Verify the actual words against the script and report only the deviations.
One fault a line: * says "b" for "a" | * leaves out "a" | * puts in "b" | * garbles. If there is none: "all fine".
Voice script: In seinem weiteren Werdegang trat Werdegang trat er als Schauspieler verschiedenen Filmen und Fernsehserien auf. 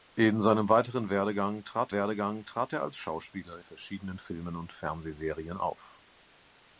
all fine